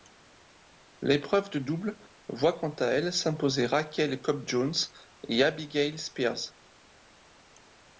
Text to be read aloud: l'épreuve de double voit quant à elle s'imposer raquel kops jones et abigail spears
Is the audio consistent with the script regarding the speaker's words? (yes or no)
yes